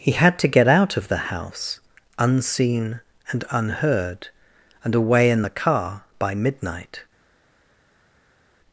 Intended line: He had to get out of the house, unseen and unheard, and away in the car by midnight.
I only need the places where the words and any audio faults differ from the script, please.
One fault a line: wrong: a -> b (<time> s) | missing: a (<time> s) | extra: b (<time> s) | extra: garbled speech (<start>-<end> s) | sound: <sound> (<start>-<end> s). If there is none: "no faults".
no faults